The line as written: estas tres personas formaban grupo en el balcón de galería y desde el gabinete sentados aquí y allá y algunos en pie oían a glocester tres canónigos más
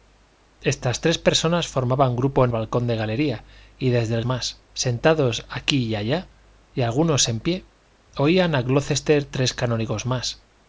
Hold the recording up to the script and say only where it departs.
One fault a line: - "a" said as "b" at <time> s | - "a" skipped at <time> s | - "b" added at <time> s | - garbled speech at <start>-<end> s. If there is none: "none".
- "el" skipped at 2.5 s
- "gabinete" said as "más" at 4.2 s